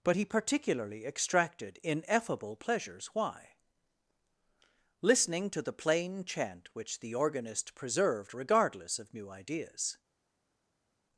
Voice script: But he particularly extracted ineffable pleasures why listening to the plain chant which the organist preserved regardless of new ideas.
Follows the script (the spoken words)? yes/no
yes